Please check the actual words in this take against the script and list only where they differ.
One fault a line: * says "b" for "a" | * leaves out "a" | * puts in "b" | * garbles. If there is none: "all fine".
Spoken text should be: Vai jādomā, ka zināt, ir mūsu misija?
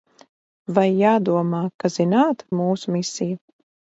all fine